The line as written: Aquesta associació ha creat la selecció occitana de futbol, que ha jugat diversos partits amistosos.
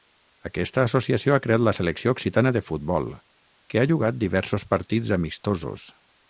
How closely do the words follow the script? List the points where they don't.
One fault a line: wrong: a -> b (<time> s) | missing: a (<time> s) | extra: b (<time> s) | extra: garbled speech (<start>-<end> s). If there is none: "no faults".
no faults